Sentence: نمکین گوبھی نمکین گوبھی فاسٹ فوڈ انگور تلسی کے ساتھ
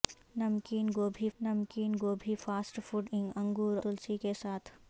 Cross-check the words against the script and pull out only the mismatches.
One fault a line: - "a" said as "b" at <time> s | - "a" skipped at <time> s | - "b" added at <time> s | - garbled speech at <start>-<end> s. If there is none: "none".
none